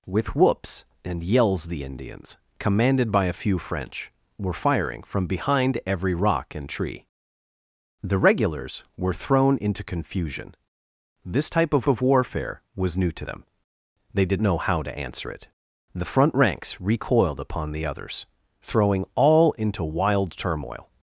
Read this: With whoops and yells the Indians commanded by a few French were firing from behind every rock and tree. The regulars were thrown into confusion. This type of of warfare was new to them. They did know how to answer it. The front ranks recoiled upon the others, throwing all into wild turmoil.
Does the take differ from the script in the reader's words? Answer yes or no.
no